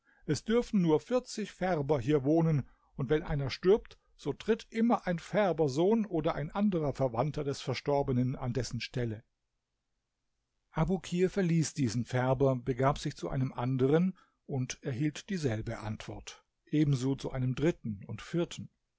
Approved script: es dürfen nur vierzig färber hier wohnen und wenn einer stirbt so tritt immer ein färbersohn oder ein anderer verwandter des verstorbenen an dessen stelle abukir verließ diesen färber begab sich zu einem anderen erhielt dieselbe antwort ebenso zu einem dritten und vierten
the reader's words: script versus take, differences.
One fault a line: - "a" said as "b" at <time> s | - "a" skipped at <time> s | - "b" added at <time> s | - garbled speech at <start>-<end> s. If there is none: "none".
- "und" added at 14.5 s